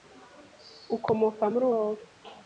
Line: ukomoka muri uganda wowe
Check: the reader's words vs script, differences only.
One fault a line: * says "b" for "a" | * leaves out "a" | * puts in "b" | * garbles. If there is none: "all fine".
* leaves out "uganda"